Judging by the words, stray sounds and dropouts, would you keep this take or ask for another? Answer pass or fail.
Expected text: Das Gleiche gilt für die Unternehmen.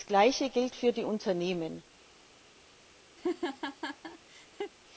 fail